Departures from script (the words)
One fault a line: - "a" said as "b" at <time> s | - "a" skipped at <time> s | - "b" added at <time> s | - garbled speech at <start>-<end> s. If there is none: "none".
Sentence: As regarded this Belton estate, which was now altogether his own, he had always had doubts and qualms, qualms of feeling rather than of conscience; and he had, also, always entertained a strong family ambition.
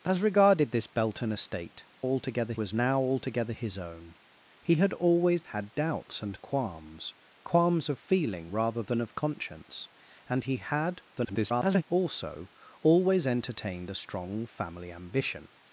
- "which" said as "altogether" at 2.0 s
- garbled speech at 11.2-11.8 s